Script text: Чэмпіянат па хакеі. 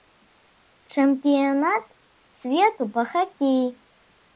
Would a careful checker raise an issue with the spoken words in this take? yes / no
yes